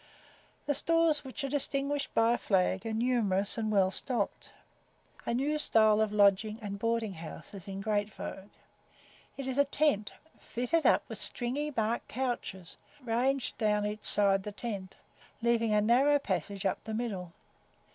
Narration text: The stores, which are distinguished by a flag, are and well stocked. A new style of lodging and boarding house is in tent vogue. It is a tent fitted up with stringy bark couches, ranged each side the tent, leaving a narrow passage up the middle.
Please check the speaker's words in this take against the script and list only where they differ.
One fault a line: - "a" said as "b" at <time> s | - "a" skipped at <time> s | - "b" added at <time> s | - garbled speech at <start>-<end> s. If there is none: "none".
- "numerous" added at 2.9 s
- "tent" said as "great" at 7.8 s
- "down" added at 13.6 s